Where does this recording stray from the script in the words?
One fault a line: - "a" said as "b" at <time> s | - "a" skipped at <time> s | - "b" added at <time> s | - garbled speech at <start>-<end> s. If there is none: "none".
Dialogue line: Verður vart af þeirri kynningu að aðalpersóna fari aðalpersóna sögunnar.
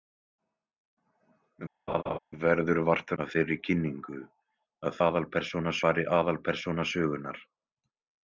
none